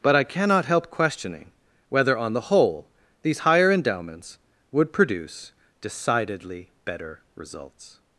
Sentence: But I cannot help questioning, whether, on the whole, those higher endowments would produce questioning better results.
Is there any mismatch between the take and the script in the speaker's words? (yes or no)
yes